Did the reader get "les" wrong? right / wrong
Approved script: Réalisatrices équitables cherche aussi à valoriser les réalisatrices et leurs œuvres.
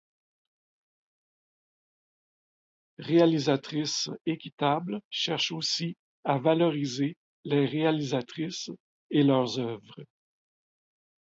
right